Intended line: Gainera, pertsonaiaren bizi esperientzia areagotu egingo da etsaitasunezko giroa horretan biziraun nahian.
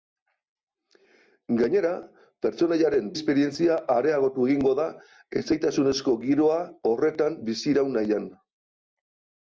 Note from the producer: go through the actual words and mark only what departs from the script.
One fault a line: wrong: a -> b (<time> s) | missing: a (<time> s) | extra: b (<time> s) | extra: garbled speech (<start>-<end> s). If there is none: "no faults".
missing: bizi (3.1 s)